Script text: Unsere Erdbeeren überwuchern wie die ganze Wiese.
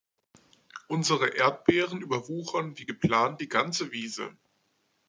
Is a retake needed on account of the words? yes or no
yes